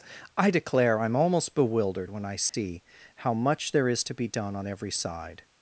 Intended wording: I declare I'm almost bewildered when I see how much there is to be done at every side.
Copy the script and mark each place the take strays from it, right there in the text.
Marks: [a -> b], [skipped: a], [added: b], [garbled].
I declare I'm almost bewildered when I see how much there is to be done [at -> on] every side.